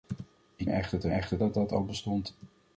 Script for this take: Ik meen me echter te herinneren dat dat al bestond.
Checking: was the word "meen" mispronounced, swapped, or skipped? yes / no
yes